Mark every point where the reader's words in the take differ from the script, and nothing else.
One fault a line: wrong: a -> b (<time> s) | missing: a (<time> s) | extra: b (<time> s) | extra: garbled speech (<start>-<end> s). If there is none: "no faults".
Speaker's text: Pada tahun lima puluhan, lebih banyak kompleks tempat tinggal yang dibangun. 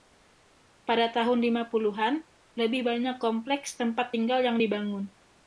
no faults